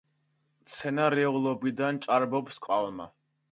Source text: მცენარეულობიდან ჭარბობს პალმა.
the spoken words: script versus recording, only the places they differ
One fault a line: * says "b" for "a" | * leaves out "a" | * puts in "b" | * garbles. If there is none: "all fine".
all fine